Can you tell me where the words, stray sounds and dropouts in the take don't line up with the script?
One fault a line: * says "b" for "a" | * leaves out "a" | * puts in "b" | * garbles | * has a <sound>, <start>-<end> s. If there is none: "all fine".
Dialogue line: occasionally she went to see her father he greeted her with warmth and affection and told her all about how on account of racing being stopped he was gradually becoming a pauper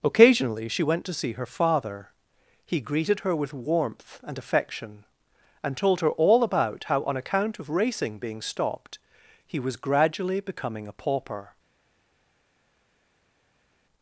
all fine